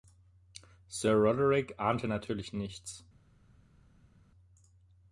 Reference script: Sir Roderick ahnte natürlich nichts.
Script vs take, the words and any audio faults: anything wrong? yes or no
no